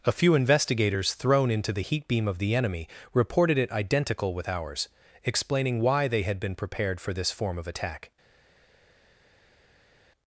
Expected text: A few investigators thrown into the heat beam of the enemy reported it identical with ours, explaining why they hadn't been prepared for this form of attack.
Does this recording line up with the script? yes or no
no